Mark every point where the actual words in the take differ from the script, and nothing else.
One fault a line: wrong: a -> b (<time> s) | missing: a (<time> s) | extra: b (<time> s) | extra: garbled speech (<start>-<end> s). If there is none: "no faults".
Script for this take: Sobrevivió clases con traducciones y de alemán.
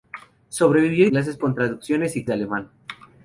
no faults